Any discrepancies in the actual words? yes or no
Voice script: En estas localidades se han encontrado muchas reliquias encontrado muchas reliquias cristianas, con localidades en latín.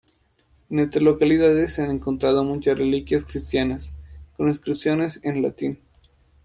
yes